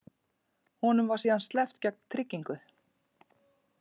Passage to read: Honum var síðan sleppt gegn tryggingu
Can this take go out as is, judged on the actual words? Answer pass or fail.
pass